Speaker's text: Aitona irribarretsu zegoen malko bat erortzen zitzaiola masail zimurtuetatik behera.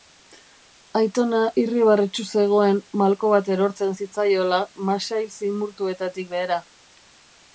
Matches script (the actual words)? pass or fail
pass